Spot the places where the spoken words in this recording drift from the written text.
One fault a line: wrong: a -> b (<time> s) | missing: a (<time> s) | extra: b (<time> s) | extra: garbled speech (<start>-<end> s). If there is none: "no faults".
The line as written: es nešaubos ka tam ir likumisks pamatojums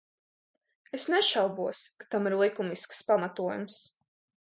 no faults